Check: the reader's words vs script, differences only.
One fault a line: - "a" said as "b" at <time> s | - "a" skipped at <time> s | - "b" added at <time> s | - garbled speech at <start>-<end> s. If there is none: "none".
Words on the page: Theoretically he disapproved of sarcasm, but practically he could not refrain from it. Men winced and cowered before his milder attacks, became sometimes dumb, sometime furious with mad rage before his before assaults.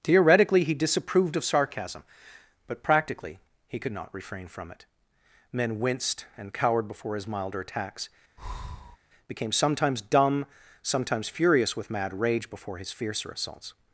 - "sometime" said as "sometimes" at 10.8 s
- "before" said as "fiercer" at 12.9 s